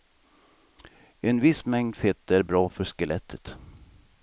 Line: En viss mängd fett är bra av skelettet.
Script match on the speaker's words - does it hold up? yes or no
no